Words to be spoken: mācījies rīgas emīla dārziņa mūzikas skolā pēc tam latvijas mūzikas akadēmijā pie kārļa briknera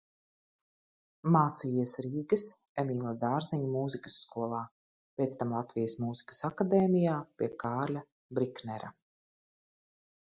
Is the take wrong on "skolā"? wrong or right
right